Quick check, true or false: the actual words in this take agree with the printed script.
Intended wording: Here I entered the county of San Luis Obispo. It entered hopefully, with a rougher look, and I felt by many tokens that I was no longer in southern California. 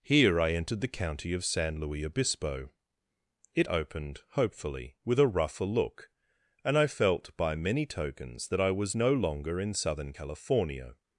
false